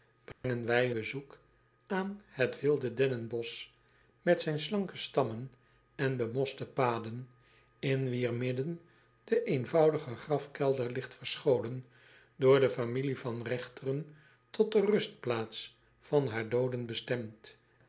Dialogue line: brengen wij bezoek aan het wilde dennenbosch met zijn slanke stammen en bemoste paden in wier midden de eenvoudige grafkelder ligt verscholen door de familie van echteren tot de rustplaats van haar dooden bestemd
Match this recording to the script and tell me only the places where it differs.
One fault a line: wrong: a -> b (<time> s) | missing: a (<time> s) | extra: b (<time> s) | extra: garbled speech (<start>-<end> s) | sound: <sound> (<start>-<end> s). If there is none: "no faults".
sound: dropout (0.3-0.4 s)